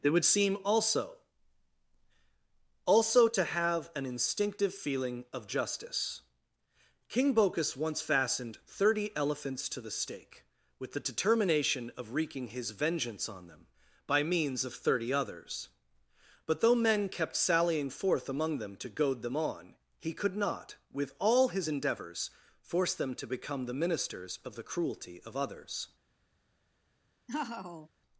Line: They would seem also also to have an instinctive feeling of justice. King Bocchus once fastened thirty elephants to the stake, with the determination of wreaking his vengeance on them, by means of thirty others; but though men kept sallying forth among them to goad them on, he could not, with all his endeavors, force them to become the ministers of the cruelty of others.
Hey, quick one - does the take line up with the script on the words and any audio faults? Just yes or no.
no